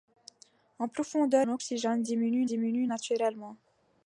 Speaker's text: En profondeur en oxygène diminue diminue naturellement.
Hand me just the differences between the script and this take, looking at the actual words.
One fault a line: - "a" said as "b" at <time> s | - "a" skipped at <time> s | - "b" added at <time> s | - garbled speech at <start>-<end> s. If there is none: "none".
none